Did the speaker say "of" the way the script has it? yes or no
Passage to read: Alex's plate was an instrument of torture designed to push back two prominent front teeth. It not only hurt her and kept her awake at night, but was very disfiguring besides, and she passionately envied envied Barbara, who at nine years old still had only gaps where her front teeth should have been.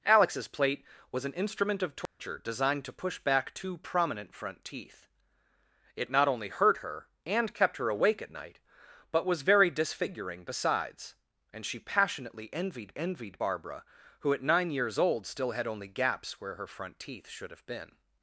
yes